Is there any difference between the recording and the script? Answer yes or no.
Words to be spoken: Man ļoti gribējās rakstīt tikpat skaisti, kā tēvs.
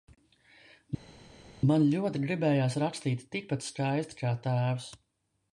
no